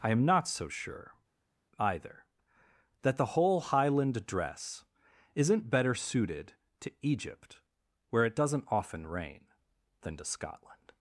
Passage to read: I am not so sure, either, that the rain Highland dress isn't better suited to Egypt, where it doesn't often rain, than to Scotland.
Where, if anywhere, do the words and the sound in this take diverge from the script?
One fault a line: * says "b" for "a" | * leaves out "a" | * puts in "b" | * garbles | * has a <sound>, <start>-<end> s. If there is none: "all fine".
* says "whole" for "rain"